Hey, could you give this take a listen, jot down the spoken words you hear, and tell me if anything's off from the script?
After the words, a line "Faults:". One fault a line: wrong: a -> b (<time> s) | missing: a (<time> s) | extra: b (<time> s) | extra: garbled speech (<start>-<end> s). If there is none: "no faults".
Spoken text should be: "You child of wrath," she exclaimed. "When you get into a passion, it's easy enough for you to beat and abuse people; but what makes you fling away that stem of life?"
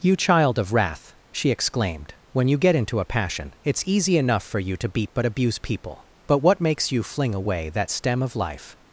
"You child of wrath," she exclaimed. "When you get into a passion, it's easy enough for you to beat but abuse people; but what makes you fling away that stem of life?"
Faults:
wrong: and -> but (5.1 s)